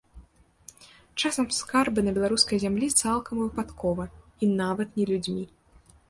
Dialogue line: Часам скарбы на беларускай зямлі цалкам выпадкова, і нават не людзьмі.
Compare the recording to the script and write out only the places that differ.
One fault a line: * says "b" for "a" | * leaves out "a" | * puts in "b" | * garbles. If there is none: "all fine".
all fine